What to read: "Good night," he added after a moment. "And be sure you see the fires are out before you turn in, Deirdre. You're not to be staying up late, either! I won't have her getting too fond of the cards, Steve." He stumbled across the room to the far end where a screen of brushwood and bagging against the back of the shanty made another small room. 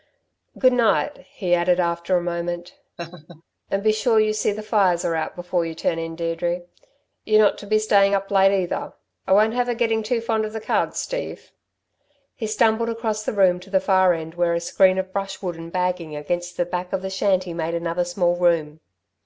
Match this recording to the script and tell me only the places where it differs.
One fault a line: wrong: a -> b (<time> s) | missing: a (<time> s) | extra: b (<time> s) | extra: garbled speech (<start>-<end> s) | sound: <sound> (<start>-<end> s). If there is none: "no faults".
sound: laugh (3.0-3.4 s)